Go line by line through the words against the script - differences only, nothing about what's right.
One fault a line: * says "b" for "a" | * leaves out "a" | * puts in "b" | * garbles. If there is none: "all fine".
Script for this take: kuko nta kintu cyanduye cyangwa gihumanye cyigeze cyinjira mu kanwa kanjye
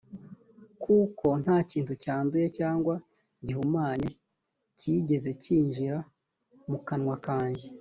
all fine